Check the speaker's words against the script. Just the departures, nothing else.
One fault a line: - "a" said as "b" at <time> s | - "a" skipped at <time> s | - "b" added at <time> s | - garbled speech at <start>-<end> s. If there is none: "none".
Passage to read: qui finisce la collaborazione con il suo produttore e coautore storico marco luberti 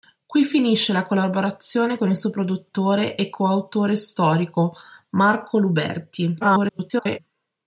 - garbled speech at 6.4-7.2 s